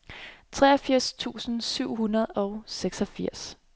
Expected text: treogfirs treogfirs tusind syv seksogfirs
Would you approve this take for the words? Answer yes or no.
no